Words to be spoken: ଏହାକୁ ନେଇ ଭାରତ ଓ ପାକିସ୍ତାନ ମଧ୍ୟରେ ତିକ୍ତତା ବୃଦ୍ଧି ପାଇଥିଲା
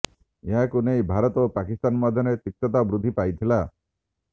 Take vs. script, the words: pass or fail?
pass